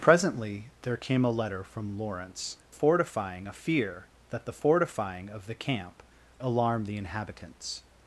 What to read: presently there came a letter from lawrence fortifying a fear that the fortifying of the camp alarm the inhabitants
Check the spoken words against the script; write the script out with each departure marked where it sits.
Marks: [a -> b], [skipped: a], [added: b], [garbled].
presently there came a letter from lawrence fortifying a fear that the fortifying of the camp alarm the inhabitants